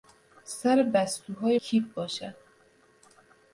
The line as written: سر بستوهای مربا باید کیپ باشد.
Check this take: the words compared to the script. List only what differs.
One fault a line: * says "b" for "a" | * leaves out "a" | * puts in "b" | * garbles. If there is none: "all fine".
* leaves out "مربا باید"